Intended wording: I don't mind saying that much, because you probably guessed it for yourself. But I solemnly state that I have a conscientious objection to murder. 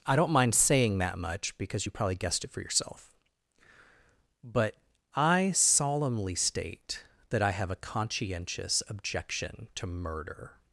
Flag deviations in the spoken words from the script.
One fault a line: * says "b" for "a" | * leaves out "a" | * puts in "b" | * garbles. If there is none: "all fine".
all fine